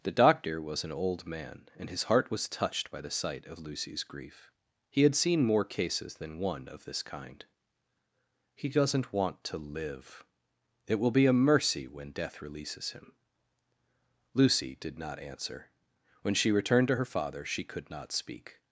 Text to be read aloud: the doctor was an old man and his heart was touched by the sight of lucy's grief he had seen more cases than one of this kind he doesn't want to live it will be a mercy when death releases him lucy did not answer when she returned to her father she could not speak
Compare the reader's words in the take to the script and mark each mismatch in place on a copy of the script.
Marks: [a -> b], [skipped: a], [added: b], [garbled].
the doctor was an old man and his heart was touched by the sight of lucy's grief he had seen more cases than one of this kind he doesn't want to live it will be a mercy when death releases him lucy did not answer when she returned to her father she could not speak